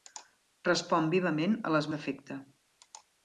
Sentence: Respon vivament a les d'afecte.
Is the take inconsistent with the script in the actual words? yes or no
no